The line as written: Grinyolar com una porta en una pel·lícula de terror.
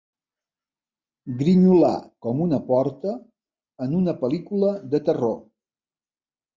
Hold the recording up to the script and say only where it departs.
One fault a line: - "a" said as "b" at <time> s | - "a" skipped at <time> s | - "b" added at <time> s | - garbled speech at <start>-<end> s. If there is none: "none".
none